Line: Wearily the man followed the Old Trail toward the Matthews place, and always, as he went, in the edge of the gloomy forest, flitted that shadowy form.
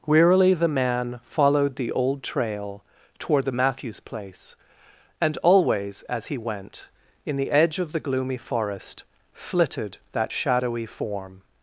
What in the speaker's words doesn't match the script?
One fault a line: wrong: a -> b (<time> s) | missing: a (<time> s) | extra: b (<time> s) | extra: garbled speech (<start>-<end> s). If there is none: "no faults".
no faults